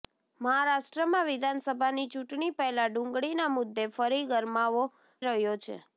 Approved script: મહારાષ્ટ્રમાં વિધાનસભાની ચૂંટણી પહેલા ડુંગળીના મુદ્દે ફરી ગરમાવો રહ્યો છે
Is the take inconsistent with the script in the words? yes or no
no